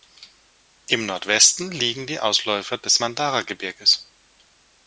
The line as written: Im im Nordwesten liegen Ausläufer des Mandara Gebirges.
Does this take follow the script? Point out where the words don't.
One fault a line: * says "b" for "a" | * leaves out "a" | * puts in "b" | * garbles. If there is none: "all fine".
* leaves out "im"
* puts in "die"